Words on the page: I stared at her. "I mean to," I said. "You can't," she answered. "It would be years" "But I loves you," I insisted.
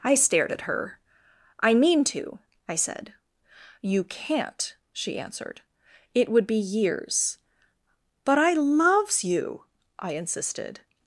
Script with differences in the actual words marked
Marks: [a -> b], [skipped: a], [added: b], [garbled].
I stared at her. "I mean to," I said. "You can't," she answered. "It would be years" "But I loves you," I insisted.